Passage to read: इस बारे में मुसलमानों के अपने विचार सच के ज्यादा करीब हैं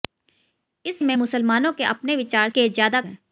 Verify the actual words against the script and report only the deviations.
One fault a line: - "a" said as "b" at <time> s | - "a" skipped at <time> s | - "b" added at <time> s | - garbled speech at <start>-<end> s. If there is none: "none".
- "बारे" skipped at 1.0 s
- "सच" skipped at 2.5 s
- "करीब" skipped at 3.0 s